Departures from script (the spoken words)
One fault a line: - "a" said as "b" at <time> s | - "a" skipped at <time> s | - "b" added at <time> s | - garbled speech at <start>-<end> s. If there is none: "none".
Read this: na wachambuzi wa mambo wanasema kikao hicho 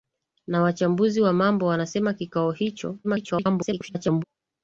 - garbled speech at 3.0-4.2 s